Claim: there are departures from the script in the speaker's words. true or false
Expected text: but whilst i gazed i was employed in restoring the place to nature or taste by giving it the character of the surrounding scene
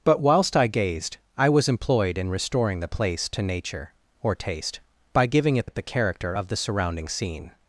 true